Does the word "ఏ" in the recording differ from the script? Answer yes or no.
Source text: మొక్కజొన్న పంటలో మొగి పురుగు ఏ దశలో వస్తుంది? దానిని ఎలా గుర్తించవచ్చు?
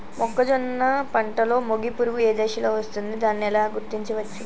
no